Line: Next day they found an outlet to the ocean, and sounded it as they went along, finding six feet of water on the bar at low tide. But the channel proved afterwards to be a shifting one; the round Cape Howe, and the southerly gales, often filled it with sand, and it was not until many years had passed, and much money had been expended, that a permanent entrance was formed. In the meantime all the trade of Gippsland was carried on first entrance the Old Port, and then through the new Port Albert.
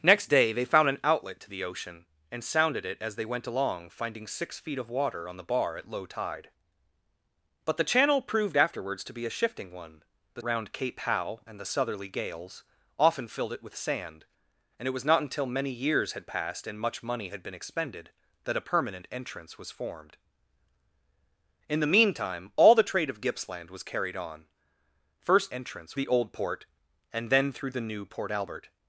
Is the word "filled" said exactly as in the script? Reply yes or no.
yes